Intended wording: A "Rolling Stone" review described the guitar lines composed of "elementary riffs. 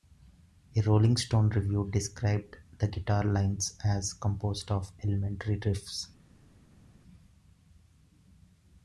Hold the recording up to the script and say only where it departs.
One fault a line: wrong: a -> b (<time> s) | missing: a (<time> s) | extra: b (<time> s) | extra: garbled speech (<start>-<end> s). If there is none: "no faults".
extra: as (3.8 s)